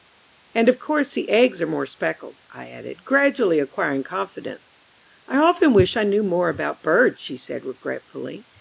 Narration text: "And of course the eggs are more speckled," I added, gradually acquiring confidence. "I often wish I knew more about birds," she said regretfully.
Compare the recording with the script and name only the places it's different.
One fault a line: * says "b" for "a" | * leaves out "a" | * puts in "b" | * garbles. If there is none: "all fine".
all fine